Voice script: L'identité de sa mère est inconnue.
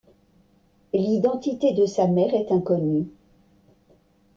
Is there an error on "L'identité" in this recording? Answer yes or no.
no